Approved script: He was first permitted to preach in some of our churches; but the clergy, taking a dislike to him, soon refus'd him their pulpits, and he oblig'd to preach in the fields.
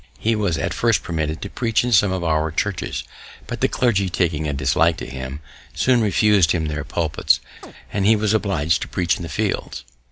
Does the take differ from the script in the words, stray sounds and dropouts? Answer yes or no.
yes